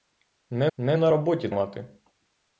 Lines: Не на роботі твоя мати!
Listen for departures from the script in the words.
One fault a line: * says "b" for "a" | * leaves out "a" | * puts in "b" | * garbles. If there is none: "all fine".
* puts in "не"
* leaves out "твоя"